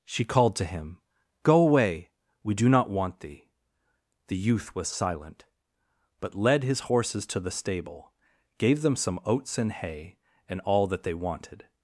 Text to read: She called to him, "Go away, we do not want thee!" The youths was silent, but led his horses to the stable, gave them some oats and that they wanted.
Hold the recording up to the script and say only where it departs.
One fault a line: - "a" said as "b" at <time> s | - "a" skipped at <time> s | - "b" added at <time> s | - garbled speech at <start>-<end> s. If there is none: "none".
- "youths" said as "youth" at 4.4 s
- "hay and all" added at 9.7 s